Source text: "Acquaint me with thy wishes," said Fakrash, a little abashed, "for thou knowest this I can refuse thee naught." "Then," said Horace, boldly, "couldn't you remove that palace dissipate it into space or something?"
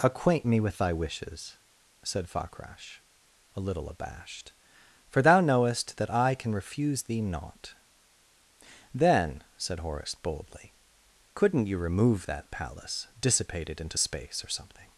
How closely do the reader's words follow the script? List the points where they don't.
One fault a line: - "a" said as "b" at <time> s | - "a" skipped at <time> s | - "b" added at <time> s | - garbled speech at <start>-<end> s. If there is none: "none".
- "this" said as "that" at 6.0 s